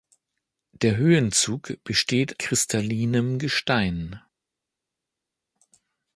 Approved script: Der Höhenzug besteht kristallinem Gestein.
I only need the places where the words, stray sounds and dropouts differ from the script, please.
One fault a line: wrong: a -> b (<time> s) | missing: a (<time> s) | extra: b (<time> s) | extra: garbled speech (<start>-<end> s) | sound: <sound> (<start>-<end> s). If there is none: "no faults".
no faults